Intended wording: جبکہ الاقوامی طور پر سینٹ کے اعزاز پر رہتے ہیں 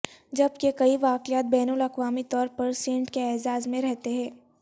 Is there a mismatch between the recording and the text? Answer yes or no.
yes